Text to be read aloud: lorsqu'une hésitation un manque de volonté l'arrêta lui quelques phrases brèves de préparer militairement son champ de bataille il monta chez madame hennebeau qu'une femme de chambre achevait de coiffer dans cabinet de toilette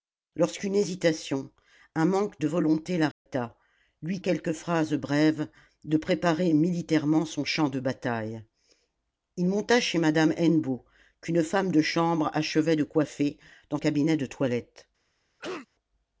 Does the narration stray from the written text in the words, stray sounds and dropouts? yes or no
yes